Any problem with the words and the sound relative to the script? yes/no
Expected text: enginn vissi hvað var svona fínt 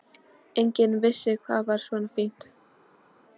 no